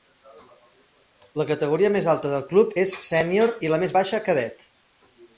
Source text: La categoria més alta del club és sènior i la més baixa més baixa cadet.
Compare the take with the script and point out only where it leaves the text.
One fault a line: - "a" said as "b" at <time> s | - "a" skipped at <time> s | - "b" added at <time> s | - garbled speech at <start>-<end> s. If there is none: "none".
- "més baixa" skipped at 4.2 s